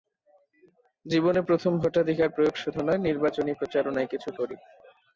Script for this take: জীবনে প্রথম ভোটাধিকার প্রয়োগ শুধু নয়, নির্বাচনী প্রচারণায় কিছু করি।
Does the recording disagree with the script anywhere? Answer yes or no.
no